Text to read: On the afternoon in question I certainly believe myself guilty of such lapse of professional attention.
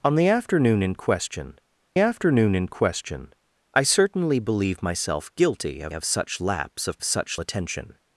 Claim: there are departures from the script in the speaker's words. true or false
true